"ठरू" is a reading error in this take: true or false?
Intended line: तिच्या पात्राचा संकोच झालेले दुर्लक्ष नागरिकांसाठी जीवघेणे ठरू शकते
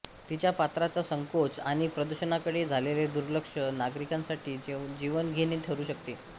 false